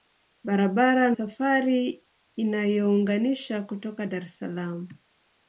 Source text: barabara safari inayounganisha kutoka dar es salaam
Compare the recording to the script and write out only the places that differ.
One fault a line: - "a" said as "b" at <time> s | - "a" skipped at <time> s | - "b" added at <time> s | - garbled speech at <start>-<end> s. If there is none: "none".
none